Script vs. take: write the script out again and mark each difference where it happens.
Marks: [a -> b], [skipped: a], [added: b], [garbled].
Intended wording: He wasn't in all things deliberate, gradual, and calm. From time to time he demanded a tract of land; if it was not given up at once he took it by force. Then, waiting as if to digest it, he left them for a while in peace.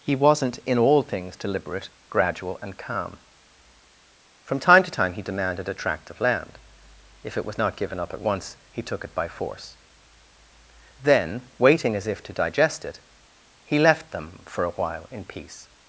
He wasn't in all things deliberate, gradual, and calm. From time to time he demanded a tract of land; if it was not given up at once he took it by force. Then, waiting as if to digest it, he left them for a while in peace.